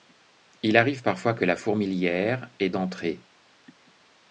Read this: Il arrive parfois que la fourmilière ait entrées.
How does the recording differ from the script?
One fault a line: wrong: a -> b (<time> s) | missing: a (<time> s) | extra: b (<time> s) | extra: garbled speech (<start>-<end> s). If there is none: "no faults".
no faults